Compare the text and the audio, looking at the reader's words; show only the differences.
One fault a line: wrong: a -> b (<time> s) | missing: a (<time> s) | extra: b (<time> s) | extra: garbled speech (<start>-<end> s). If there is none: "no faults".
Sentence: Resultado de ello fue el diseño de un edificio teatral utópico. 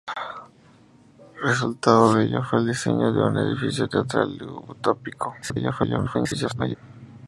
extra: garbled speech (5.4-6.8 s)